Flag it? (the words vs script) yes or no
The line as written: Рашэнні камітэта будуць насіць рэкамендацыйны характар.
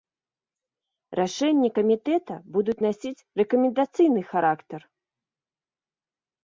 no